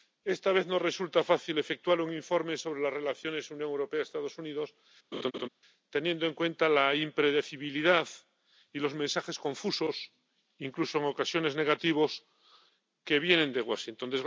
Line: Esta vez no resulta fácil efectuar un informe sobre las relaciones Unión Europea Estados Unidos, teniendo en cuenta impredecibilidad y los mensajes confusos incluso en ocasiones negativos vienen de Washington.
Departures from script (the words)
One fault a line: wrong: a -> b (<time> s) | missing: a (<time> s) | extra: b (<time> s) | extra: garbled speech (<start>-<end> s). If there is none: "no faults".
extra: la (6.7 s)
extra: que (13.0 s)